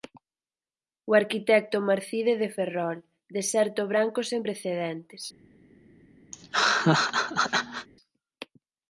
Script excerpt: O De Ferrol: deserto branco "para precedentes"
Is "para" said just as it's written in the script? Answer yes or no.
no